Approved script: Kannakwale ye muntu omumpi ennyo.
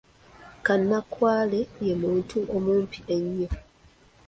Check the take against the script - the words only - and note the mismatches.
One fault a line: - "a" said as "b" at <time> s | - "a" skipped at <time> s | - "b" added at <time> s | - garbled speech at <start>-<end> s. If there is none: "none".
none